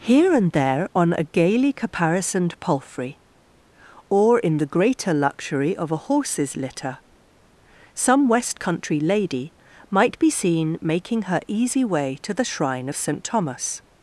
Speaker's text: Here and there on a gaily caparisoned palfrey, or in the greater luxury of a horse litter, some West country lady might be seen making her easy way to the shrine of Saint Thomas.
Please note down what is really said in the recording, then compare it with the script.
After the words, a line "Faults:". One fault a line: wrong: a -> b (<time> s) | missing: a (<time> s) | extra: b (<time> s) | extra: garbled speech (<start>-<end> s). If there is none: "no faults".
Here and there on a gaily caparisoned palfrey, or in the greater luxury of a horses litter, some West country lady might be seen making her easy way to the shrine of Saint Thomas.
Faults:
wrong: horse -> horses (6.1 s)